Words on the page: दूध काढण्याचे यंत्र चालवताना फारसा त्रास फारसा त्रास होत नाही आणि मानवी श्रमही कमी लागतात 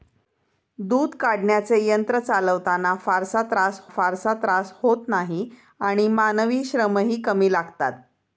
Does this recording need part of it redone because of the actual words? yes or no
no